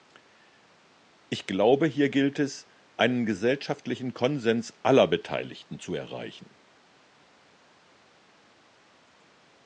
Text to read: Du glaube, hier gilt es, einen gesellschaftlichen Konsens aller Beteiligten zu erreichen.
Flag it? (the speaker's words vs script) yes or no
yes